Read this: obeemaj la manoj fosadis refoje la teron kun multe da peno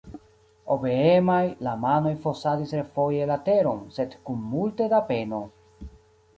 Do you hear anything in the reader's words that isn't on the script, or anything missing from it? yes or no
yes